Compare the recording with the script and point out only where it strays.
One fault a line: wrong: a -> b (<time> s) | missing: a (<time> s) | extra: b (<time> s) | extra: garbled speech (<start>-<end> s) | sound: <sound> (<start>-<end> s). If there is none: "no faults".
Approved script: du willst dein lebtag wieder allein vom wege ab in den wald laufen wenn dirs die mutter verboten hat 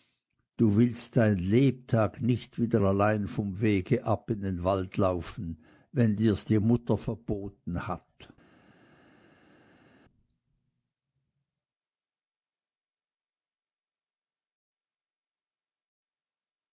extra: nicht (2.2 s)